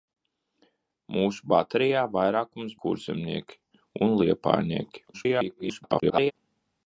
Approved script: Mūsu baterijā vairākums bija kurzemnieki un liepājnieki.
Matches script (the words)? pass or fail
fail